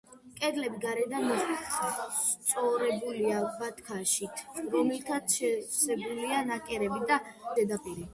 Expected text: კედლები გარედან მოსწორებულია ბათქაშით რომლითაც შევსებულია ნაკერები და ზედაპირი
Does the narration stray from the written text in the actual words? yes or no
no